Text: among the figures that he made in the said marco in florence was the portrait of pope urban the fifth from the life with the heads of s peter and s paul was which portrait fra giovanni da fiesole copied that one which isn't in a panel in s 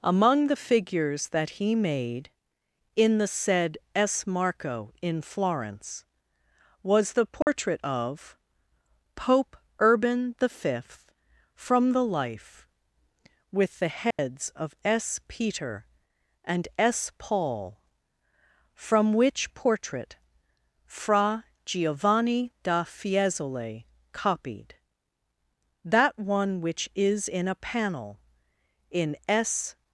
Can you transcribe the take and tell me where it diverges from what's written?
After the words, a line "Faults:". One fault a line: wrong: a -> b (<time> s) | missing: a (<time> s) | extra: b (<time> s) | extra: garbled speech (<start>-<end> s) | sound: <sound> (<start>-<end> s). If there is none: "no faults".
among the figures that he made in the said s marco in florence was the portrait of pope urban the fifth from the life with the heads of s peter and s paul from which portrait fra giovanni da fiesole copied that one which is in a panel in s
Faults:
extra: s (4.0 s)
sound: dropout (7.4-7.5 s)
sound: dropout (14.1-14.2 s)
wrong: was -> from (18.7 s)
wrong: isn't -> is (26.9 s)